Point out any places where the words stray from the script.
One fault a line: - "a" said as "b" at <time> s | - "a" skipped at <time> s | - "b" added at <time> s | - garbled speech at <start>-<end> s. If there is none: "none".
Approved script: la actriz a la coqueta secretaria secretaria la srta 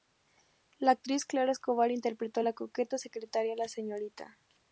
- "clara escobar interpretó" added at 1.3 s
- "secretaria" skipped at 3.6 s